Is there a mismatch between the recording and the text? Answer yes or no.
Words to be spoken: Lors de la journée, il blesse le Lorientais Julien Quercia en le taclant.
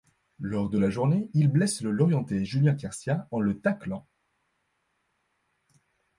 no